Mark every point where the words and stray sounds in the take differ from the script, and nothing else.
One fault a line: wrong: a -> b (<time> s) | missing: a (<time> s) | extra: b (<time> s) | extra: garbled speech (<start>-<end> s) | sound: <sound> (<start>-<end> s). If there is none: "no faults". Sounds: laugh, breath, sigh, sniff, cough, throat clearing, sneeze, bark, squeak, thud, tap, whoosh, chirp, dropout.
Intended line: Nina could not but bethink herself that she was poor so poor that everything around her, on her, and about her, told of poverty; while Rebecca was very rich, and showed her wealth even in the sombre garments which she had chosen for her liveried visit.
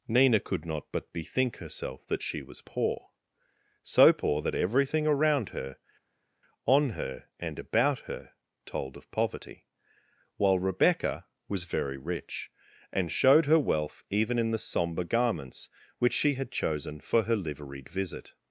no faults